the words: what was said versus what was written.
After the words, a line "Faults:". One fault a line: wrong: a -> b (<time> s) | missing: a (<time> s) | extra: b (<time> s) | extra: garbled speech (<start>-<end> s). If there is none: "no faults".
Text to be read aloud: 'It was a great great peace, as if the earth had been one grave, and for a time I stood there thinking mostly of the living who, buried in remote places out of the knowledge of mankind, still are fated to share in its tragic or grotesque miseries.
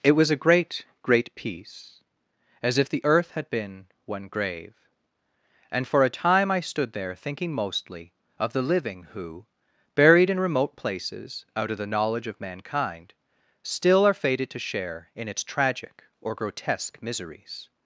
'It was a great great peace, as if the earth had been one grave, and for a time I stood there thinking mostly of the living who, buried in remote places out of the knowledge of mankind, still are fated to share in its tragic or grotesque miseries.
Faults:
no faults